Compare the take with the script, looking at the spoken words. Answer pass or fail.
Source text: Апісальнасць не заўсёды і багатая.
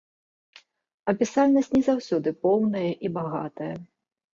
fail